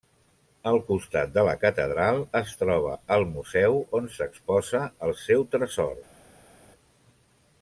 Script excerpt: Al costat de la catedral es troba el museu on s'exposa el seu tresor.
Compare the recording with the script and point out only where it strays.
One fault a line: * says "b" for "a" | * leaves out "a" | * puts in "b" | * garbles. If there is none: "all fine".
all fine